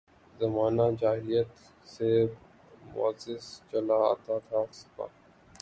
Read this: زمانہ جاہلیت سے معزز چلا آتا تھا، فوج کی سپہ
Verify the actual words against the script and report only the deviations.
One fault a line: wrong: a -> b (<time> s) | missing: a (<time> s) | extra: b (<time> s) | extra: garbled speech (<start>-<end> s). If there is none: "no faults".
missing: فوج کی (4.6 s)